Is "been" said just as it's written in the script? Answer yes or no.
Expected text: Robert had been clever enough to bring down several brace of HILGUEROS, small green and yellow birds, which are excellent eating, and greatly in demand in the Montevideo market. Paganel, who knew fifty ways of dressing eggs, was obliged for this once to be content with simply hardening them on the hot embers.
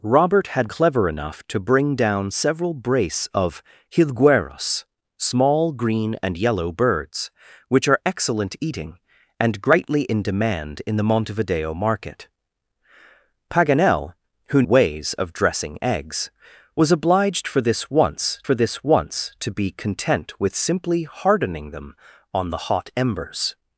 no